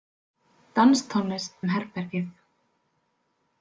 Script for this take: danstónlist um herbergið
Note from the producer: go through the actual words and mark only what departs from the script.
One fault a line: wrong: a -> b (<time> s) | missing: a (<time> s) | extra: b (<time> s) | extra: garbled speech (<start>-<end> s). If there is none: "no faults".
no faults